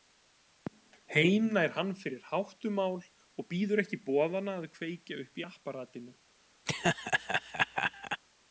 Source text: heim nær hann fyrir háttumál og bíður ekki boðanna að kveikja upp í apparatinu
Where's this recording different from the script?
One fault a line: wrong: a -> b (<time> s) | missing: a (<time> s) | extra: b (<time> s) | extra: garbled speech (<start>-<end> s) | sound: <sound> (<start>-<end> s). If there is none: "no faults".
sound: laugh (6.7-8.2 s)